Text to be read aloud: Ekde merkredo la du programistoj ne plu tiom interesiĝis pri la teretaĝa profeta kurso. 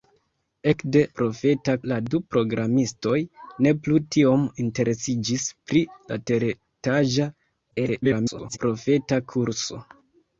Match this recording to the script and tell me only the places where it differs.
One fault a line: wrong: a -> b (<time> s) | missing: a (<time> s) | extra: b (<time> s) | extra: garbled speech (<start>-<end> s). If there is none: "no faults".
wrong: merkredo -> profeta (1.2 s)
extra: garbled speech (7.7-8.6 s)